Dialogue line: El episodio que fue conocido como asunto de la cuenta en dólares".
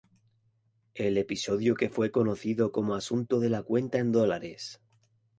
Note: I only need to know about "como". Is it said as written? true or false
true